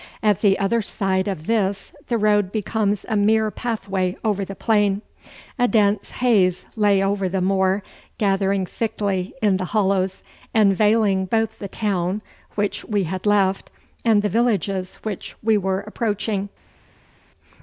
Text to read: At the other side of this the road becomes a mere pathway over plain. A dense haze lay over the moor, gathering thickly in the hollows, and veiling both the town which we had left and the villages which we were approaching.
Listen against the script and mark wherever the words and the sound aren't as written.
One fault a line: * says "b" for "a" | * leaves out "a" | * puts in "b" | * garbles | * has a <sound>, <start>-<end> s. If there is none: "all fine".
* puts in "the"